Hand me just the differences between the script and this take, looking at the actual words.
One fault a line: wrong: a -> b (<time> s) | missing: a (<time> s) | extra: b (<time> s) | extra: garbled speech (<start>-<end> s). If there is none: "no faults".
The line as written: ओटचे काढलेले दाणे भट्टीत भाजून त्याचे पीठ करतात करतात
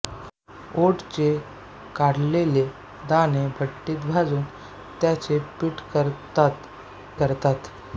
no faults